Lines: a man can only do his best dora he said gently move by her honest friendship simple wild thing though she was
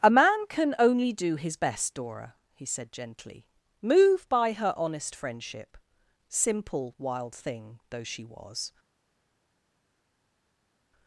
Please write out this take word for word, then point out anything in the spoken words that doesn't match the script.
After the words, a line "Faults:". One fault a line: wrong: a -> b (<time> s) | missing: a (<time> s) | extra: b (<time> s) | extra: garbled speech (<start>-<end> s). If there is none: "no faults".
a man can only do his best dora he said gently move by her honest friendship simple wild thing though she was
Faults:
no faults